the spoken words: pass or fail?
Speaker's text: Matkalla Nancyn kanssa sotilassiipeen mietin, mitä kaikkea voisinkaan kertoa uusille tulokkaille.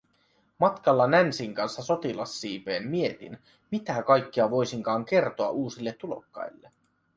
pass